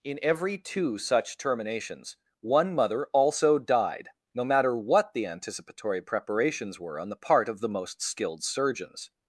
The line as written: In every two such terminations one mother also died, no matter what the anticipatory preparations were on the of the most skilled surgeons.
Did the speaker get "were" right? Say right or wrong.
right